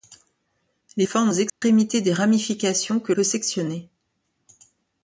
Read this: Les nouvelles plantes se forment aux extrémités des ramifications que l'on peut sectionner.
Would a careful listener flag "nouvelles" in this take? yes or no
yes